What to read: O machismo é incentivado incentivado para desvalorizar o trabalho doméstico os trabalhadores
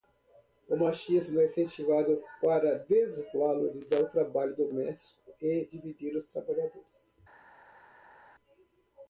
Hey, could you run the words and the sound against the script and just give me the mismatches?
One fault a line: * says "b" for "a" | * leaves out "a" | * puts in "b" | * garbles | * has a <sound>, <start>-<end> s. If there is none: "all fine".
* leaves out "incentivado"
* puts in "e dividir"